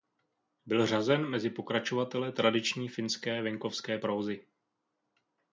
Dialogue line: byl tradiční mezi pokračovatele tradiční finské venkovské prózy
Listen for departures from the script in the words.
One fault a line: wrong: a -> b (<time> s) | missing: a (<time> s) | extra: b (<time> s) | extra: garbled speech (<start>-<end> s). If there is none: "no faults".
wrong: tradiční -> řazen (0.8 s)